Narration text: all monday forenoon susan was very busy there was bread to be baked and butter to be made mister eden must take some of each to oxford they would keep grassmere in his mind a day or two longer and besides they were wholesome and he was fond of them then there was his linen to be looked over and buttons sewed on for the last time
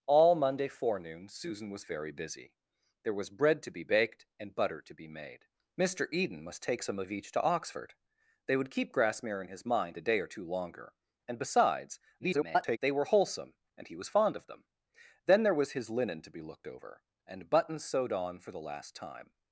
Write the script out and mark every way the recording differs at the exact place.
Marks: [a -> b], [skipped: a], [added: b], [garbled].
all monday forenoon susan was very busy there was bread to be baked and butter to be made mister eden must take some of each to oxford they would keep grassmere in his mind a day or two longer and besides [garbled] they were wholesome and he was fond of them then there was his linen to be looked over and buttons sewed on for the last time